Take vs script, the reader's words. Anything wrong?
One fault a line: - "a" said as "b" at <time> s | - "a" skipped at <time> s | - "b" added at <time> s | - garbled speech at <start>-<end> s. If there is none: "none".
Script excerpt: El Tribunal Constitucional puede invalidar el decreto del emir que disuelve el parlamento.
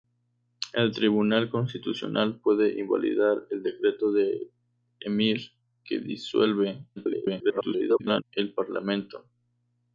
- garbled speech at 7.0-8.2 s